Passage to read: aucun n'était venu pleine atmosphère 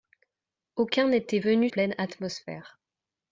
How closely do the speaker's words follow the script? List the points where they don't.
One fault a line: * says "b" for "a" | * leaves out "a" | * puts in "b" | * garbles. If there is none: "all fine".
all fine